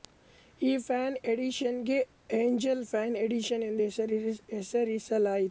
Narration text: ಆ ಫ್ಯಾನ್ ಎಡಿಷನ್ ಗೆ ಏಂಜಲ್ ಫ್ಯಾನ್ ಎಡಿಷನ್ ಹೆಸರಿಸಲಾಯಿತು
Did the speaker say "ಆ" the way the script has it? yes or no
no